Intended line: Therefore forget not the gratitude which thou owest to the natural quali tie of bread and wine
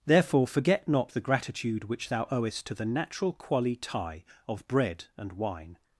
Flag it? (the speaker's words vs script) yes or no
no